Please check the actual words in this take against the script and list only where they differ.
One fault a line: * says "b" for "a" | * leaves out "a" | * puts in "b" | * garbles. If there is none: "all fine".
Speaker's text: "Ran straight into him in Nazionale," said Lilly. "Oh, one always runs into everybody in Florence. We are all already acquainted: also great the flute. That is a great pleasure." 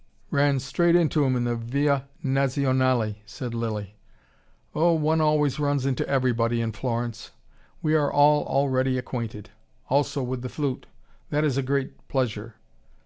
* puts in "the Via"
* says "with" for "great"